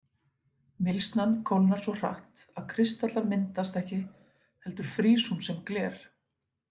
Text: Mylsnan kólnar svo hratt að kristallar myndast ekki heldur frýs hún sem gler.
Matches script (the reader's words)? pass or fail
pass